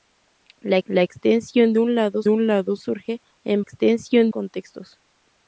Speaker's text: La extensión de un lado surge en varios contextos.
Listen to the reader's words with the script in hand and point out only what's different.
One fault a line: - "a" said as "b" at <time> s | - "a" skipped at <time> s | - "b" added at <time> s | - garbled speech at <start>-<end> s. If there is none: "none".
- "la" added at 0.9 s
- "un lado" added at 2.3 s
- "varios" said as "extensión" at 3.6 s